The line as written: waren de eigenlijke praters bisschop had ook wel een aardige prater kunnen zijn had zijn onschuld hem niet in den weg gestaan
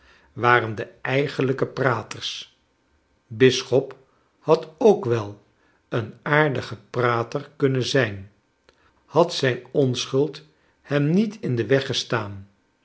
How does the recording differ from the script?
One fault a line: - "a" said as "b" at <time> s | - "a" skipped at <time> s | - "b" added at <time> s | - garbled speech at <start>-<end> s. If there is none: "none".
none